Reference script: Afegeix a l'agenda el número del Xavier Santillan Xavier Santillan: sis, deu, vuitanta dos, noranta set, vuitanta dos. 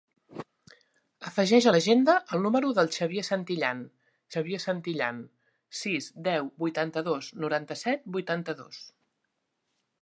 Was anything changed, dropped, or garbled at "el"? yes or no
no